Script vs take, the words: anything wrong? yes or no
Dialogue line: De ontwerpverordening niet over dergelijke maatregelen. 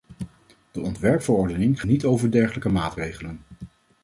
no